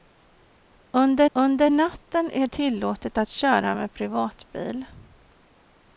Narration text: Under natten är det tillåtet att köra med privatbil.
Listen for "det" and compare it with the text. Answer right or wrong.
wrong